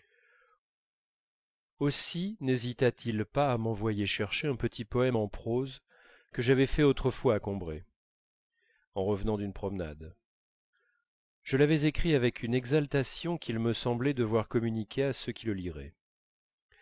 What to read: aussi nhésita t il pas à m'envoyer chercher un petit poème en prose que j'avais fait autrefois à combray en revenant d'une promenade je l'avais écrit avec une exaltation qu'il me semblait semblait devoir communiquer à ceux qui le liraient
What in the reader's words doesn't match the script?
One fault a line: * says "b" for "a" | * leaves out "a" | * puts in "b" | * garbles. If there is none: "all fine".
* leaves out "semblait"